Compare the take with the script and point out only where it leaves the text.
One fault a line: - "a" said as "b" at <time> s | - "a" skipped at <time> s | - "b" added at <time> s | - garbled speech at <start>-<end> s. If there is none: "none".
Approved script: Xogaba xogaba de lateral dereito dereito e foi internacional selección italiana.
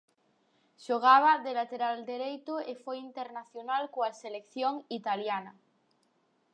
- "xogaba" skipped at 1.3 s
- "dereito" skipped at 2.5 s
- "coa" added at 3.9 s